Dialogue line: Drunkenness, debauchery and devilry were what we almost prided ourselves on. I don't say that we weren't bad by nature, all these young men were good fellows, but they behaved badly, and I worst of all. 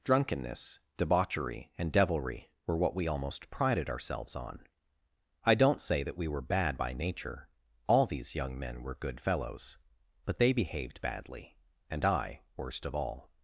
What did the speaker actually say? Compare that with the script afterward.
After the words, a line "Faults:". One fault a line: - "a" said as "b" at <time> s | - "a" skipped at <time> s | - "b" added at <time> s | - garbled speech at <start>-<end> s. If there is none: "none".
Drunkenness, debauchery and devilry were what we almost prided ourselves on. I don't say that we were bad by nature, all these young men were good fellows, but they behaved badly, and I worst of all.
Faults:
- "weren't" said as "were" at 6.3 s